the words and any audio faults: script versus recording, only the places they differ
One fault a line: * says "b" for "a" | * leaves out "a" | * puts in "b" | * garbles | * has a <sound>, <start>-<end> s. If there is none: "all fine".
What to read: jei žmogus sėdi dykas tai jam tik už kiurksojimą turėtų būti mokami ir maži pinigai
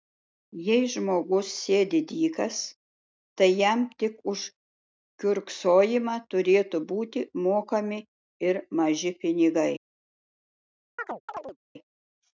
* has a chirp, 11.0-11.6 s